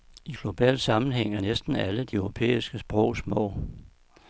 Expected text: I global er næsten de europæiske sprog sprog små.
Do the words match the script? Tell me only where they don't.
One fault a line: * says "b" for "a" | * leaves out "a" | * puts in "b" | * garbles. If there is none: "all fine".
* puts in "sammenhæng"
* puts in "alle"
* leaves out "sprog"